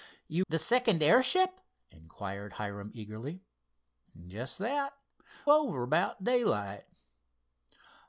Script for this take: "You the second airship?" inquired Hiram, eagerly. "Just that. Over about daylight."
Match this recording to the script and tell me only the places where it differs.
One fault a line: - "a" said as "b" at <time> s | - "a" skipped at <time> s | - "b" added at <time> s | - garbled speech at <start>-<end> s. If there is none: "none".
none